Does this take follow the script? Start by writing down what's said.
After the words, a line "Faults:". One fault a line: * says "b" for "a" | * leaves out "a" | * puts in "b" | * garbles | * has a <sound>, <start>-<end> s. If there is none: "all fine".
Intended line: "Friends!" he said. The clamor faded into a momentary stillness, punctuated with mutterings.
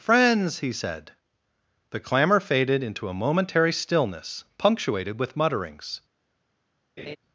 "Friends!" he said. The clamor faded into a momentary stillness, punctuated with mutterings.
Faults:
* has a laugh, 7.0-7.2 s